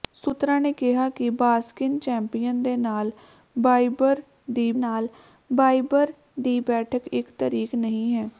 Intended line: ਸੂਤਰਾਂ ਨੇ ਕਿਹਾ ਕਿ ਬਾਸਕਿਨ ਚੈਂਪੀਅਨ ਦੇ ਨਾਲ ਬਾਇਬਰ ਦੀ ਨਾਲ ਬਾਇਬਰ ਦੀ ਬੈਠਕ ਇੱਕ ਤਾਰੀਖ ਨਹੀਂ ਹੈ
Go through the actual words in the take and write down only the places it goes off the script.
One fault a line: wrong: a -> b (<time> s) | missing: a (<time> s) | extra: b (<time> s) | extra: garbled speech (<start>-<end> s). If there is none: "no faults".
no faults